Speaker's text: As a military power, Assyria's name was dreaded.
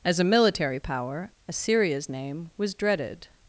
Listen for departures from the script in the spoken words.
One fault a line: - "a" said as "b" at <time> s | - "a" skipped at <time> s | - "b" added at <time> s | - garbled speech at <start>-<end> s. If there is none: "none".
none